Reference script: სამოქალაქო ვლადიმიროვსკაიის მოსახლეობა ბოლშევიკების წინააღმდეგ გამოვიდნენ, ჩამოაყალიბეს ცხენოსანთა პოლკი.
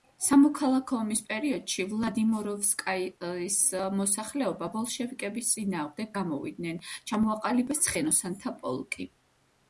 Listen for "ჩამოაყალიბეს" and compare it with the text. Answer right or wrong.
right